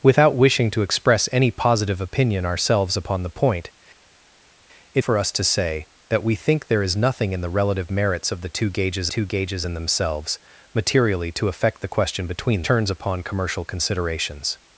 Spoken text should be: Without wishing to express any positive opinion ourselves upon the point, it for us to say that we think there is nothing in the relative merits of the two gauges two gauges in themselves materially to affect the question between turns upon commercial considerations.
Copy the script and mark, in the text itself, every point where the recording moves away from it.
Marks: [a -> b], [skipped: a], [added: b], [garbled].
Without wishing to express any positive opinion ourselves upon the point, it for us to say that we think there is nothing in the relative merits of the two gauges two gauges in themselves materially to affect the question between turns upon commercial considerations.